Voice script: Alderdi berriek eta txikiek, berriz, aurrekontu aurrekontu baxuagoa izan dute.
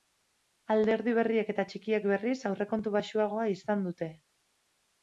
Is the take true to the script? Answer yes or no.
no